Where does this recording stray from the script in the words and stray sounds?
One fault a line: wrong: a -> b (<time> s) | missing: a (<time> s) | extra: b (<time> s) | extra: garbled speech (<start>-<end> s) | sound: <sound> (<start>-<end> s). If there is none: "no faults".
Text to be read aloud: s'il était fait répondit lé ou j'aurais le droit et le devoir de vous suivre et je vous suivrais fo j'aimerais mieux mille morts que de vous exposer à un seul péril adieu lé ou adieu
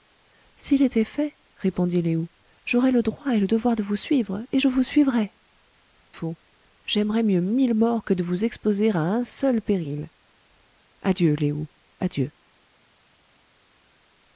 no faults